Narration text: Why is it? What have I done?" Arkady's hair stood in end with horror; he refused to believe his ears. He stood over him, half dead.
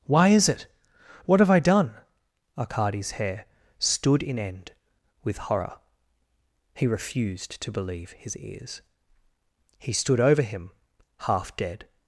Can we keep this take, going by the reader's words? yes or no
yes